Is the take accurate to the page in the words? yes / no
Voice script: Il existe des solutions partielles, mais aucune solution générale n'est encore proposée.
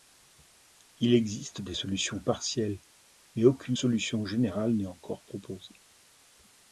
yes